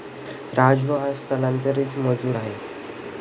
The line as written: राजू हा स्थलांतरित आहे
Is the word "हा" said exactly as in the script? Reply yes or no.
yes